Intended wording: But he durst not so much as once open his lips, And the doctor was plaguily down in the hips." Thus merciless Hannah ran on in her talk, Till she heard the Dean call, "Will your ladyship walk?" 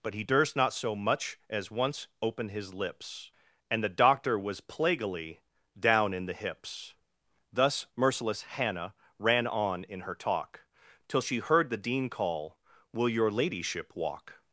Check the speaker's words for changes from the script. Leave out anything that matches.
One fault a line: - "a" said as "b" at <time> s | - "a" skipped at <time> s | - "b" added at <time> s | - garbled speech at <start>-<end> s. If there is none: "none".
none